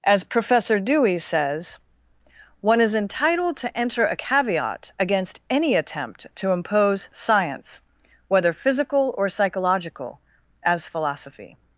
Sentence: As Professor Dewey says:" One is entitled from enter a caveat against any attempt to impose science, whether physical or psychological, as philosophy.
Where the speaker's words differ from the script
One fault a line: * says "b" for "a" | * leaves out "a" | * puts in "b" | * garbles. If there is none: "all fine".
* says "to" for "from"